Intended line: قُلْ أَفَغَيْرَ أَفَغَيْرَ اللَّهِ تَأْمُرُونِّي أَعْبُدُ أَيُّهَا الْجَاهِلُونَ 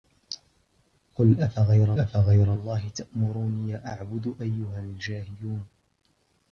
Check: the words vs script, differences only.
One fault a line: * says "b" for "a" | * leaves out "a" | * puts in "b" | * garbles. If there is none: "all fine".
all fine